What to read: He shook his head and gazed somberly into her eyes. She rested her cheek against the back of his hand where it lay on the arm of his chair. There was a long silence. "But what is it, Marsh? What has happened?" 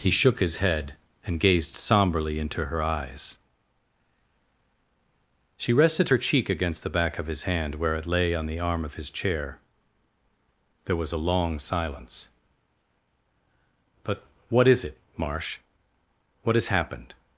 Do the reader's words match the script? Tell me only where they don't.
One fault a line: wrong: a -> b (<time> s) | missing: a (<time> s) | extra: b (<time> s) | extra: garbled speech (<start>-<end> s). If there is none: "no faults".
no faults